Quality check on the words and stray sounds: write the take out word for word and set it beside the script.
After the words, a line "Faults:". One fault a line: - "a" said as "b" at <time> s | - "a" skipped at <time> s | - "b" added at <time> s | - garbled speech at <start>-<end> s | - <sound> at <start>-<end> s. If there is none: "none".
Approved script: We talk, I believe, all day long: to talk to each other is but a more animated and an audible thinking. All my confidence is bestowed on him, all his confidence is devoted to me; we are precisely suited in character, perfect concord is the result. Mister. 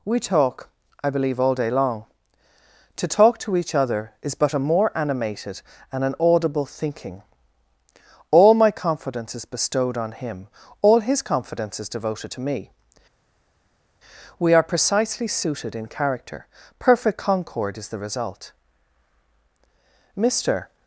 We talk, I believe, all day long: to talk to each other is but a more animated and an audible thinking. All my confidence is bestowed on him, all his confidence is devoted to me; we are precisely suited in character, perfect concord is the result. Mister.
Faults:
none